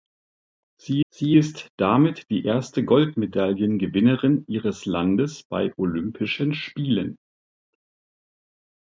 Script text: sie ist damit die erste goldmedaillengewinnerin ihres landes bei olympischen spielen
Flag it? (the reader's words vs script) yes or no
yes